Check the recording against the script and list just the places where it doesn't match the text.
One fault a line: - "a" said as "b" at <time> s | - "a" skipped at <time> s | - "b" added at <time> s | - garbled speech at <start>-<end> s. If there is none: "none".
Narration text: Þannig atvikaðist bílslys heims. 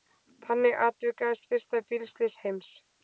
- "fyrsta" added at 1.5 s